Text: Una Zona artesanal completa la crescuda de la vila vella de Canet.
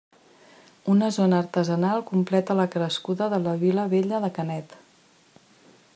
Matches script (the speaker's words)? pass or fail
pass